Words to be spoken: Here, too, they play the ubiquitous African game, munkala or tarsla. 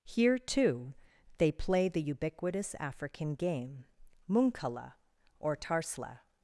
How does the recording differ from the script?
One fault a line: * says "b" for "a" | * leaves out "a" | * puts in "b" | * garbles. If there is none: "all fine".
all fine